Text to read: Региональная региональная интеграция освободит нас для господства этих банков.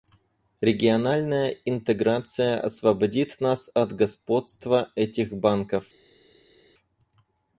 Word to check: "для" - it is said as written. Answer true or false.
false